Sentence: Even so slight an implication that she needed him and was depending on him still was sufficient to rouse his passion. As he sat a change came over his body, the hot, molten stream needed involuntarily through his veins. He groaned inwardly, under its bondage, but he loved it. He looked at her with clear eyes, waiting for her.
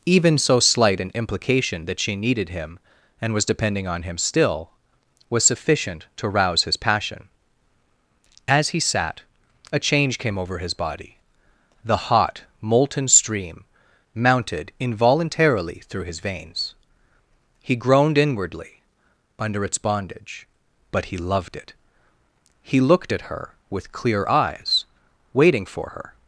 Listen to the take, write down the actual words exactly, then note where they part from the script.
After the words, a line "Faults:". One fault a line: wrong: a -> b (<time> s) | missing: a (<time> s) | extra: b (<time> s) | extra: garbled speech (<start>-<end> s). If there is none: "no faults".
Even so slight an implication that she needed him and was depending on him still was sufficient to rouse his passion. As he sat a change came over his body, the hot, molten stream mounted involuntarily through his veins. He groaned inwardly, under its bondage, but he loved it. He looked at her with clear eyes, waiting for her.
Faults:
wrong: needed -> mounted (14.1 s)